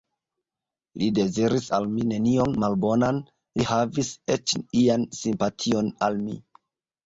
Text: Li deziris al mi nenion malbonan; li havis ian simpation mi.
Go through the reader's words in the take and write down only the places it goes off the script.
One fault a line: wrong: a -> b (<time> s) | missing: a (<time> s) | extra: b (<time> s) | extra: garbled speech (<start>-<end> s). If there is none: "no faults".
extra: eĉ (4.4 s)
extra: al (6.1 s)